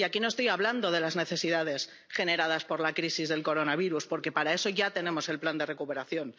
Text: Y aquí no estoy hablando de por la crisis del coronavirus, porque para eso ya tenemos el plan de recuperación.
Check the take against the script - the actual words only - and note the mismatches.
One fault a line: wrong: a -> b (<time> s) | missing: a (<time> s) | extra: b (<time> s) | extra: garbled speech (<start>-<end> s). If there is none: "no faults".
extra: las necesidades generadas (1.0 s)